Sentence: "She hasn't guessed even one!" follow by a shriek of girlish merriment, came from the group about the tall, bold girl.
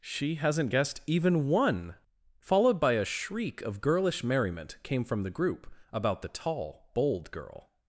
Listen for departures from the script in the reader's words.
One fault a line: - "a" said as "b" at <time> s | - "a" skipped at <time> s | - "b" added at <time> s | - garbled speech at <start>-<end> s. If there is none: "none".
- "follow" said as "followed" at 2.4 s